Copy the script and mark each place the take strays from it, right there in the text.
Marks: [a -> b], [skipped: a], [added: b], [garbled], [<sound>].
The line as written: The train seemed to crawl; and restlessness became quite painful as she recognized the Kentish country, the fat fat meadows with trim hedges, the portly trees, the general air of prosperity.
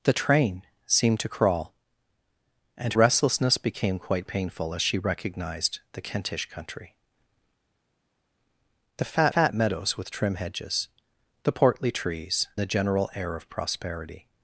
The train seemed to crawl; and restlessness became quite painful as she recognized the Kentish country, the fat fat meadows with trim hedges, the portly trees, the general air of prosperity.